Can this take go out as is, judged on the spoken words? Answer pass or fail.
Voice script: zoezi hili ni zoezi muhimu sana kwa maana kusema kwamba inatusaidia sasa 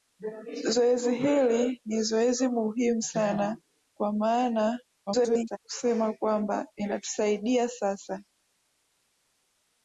fail